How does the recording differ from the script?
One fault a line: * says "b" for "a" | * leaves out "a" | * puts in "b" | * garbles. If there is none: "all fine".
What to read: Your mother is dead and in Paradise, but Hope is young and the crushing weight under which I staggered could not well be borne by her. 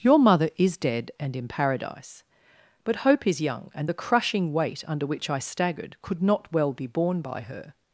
all fine